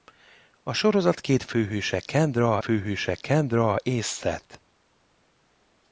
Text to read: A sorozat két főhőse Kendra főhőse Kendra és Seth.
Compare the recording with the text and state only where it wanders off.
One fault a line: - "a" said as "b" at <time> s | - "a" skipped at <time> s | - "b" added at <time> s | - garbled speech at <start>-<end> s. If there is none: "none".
none